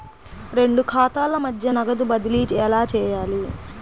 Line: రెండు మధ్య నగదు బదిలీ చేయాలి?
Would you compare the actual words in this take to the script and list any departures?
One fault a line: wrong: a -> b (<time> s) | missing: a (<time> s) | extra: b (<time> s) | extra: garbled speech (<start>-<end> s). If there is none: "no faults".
extra: ఖాతాల (0.8 s)
extra: ఎలా (2.7 s)